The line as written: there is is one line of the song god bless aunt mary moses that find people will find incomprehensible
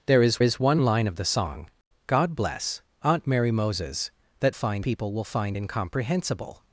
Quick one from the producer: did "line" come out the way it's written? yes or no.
yes